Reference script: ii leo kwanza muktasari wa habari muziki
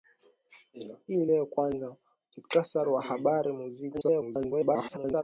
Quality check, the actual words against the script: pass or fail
fail